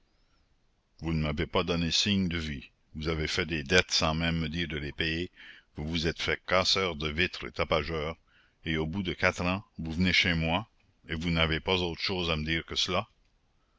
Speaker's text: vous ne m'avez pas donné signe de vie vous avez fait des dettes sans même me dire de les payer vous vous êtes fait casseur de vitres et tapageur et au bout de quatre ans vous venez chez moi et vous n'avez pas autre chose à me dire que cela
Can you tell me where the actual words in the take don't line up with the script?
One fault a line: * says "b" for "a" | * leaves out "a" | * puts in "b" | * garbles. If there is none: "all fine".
all fine